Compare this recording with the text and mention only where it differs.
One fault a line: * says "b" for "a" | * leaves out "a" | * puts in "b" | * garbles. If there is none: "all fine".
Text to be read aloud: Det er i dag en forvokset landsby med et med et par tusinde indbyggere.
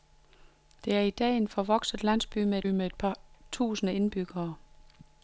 all fine